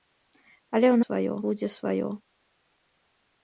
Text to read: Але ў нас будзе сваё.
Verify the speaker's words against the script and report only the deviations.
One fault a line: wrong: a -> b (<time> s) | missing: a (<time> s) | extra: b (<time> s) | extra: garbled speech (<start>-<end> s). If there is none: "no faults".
wrong: нас -> сваё (1.0 s)